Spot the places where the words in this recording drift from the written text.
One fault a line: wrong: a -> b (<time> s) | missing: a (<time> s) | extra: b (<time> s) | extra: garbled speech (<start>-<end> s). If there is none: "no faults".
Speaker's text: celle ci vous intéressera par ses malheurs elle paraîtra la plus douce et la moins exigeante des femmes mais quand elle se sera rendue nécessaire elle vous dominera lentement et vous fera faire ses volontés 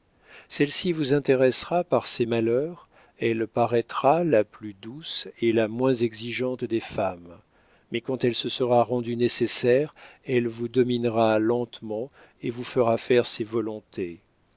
no faults